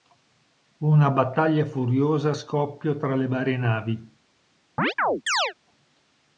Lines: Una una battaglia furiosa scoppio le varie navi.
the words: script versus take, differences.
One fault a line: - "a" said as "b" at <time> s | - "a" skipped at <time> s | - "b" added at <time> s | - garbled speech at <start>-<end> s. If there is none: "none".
- "una" skipped at 1.1 s
- "tra" added at 2.9 s